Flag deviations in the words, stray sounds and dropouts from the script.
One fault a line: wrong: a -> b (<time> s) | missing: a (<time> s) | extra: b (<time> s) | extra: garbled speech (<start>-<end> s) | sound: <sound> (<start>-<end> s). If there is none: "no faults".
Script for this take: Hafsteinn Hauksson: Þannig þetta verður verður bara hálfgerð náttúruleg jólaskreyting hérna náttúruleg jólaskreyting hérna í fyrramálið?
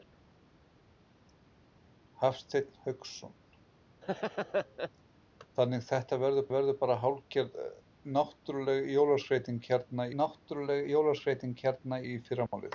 sound: laugh (4.0-4.9 s)
sound: dropout (12.5-12.5 s)